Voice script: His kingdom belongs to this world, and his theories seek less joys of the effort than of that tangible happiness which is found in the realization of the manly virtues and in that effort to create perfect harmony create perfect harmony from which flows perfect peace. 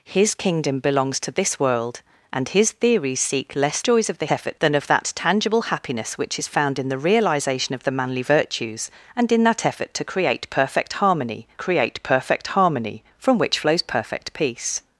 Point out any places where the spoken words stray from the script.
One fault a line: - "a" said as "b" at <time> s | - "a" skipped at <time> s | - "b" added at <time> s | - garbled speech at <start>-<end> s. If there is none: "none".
none